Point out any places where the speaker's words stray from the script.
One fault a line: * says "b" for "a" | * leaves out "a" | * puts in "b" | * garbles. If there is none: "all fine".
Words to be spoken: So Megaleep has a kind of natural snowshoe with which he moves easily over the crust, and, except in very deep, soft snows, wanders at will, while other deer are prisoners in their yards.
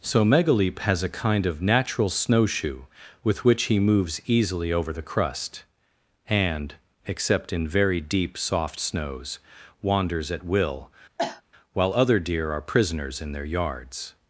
all fine